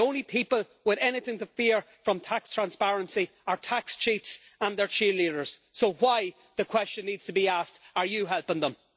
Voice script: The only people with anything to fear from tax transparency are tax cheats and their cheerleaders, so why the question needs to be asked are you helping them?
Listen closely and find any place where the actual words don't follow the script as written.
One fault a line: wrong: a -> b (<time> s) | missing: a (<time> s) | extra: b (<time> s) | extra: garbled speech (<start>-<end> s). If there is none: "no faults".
no faults